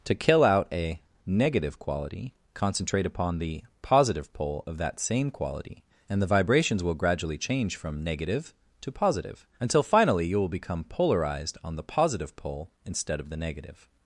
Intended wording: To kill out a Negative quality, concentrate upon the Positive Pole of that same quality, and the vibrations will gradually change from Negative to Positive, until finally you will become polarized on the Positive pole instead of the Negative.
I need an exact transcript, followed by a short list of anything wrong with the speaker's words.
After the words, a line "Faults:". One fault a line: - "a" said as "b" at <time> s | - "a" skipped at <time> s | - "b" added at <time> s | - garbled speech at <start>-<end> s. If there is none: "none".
To kill out a Negative quality, concentrate upon the Positive Pole of that same quality, and the vibrations will gradually change from Negative to Positive, until finally you will become polarized on the Positive pole instead of the Negative.
Faults:
none